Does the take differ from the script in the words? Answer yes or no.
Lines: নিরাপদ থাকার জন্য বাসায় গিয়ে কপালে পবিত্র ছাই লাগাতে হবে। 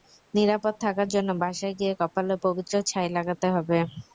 no